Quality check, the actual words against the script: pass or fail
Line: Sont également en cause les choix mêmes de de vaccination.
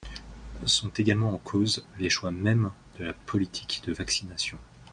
fail